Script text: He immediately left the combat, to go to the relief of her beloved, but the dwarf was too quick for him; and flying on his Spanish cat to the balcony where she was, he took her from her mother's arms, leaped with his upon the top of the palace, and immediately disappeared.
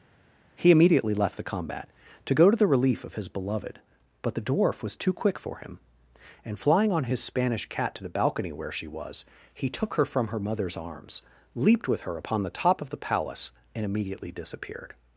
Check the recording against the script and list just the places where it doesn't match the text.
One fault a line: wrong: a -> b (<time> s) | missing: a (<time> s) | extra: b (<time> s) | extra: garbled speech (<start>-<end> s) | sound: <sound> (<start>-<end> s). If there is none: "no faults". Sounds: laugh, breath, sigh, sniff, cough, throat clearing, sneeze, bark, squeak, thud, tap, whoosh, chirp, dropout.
wrong: her -> his (3.1 s)
wrong: his -> her (12.0 s)